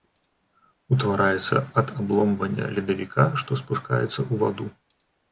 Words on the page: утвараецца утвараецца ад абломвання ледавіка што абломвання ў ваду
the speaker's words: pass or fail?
fail